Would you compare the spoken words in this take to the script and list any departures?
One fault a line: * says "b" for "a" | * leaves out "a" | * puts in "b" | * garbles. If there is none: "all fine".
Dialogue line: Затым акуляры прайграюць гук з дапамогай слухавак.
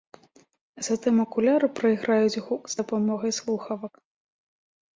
all fine